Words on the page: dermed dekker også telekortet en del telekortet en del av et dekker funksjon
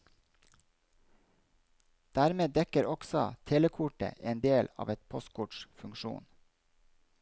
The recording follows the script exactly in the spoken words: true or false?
false